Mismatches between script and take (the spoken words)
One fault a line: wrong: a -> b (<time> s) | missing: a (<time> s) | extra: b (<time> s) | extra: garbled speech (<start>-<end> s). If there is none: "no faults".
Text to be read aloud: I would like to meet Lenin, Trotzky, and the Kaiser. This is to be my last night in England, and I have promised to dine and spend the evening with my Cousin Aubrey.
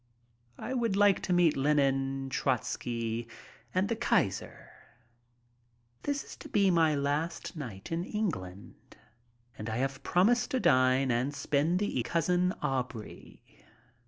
missing: evening with my (12.0 s)